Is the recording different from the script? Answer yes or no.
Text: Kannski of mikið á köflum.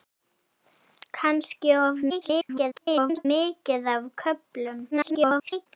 yes